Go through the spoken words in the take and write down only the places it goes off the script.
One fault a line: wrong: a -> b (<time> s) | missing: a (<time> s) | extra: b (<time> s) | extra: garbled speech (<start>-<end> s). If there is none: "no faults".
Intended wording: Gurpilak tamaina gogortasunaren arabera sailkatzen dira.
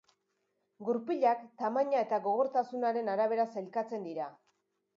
extra: eta (2.1 s)